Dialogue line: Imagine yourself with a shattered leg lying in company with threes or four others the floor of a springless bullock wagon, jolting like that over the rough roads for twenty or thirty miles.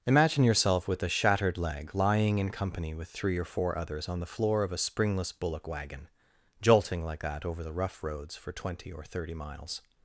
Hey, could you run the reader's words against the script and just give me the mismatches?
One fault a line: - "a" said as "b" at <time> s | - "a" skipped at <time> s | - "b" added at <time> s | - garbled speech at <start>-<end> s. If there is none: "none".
- "threes" said as "three" at 3.1 s
- "on" added at 4.1 s